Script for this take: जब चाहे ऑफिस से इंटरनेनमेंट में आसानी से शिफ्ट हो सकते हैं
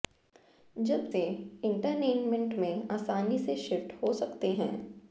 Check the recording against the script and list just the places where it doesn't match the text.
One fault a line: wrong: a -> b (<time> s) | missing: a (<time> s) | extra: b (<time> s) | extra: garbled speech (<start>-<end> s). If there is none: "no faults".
missing: चाहे ऑफिस (1.1 s)